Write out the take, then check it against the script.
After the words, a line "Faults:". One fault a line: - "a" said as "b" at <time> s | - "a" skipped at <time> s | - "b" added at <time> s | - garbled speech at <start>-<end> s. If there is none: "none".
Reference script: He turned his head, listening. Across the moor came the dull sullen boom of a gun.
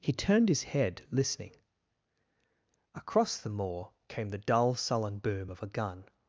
He turned his head, listening. Across the moor came the dull sullen boom of a gun.
Faults:
none